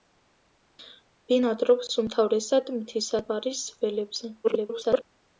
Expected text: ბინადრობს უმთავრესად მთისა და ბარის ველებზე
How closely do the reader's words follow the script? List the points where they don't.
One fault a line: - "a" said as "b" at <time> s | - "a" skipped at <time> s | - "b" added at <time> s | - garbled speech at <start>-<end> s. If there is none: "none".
- "და" skipped at 3.2 s
- garbled speech at 4.4-5.0 s